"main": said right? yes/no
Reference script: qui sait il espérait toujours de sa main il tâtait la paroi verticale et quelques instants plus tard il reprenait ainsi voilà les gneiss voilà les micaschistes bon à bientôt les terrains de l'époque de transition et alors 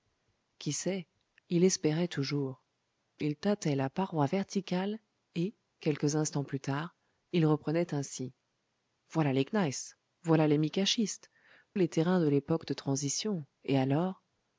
no